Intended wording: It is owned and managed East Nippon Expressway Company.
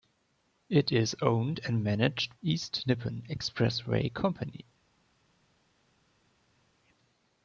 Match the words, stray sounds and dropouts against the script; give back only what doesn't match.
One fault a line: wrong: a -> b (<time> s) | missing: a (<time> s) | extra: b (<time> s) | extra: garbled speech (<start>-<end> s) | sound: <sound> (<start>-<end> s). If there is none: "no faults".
no faults